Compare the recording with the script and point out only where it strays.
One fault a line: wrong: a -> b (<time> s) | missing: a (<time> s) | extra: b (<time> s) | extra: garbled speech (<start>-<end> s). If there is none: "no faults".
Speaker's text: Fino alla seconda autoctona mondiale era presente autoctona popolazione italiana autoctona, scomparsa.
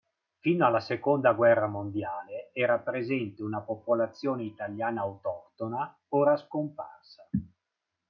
wrong: autoctona -> guerra (1.3 s)
wrong: autoctona -> una (3.4 s)
extra: ora (6.1 s)